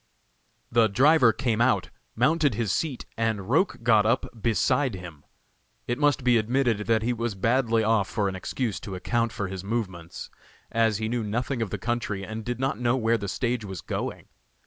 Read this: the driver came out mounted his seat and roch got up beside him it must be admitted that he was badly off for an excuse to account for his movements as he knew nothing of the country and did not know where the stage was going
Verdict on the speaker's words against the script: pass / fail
pass